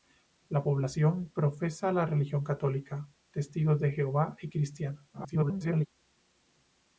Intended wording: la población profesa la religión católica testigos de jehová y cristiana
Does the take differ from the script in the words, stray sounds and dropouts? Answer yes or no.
yes